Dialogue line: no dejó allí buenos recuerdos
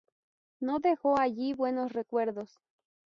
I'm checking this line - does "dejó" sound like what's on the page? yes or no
yes